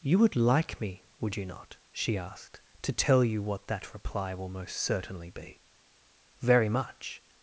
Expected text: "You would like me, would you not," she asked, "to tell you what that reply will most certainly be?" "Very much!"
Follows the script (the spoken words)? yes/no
yes